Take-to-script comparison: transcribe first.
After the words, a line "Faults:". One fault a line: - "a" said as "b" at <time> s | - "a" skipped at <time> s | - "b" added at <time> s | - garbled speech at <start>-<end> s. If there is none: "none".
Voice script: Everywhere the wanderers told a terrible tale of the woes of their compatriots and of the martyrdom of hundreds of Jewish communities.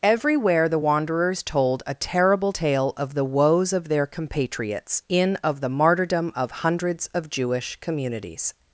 Everywhere the wanderers told a terrible tale of the woes of their compatriots in of the martyrdom of hundreds of Jewish communities.
Faults:
- "and" said as "in" at 5.1 s